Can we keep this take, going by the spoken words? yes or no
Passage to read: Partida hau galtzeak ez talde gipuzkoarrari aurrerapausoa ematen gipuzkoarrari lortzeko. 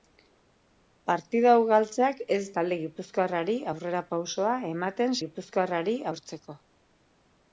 yes